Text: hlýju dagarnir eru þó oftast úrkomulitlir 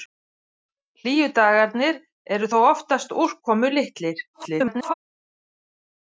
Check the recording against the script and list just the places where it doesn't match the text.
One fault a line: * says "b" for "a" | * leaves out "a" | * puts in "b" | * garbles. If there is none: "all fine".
* garbles